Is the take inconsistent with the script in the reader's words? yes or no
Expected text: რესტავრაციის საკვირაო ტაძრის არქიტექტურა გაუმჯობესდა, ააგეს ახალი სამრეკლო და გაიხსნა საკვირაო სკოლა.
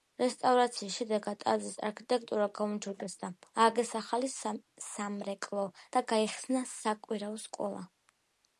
yes